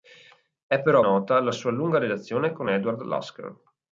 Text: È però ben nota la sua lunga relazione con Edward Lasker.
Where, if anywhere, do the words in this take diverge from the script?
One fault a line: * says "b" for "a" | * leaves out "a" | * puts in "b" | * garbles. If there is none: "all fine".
* leaves out "ben"